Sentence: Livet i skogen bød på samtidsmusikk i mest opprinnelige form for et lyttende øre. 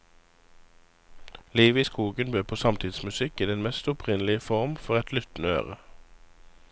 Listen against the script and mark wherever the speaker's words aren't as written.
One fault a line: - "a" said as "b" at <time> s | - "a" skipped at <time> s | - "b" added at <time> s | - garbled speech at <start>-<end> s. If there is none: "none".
- "den" added at 3.5 s